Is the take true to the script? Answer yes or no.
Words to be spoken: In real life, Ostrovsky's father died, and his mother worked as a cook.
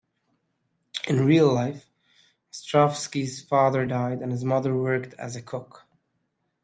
yes